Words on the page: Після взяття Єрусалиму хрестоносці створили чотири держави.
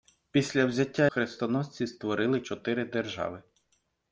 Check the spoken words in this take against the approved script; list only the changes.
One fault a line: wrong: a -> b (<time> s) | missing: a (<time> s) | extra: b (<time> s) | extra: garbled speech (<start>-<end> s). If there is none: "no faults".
missing: Єрусалиму (1.1 s)